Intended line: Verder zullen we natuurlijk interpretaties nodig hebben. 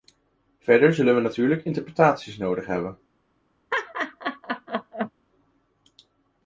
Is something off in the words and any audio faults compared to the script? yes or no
yes